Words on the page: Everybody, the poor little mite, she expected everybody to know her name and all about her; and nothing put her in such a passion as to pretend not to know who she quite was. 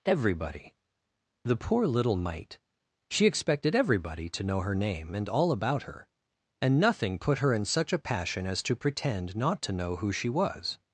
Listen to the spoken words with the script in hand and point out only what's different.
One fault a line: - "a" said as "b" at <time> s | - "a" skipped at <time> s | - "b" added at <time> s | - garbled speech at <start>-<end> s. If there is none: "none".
- "quite" skipped at 10.3 s